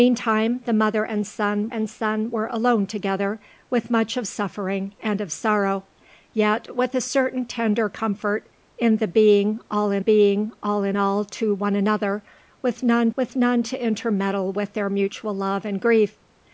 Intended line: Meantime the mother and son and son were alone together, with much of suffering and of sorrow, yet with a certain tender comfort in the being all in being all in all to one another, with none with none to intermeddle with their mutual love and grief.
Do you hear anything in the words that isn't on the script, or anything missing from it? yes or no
no